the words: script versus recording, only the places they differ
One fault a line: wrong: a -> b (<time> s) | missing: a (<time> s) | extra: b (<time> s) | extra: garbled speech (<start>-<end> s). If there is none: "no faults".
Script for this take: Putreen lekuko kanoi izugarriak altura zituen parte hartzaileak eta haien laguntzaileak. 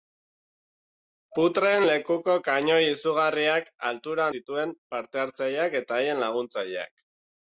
no faults